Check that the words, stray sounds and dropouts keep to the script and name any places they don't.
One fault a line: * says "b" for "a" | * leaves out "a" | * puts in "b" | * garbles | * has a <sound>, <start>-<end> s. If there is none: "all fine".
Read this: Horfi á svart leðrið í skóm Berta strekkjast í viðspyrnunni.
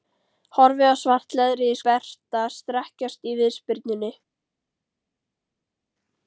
* leaves out "skóm"